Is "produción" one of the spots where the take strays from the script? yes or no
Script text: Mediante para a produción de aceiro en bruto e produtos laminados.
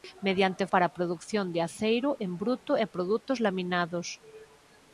no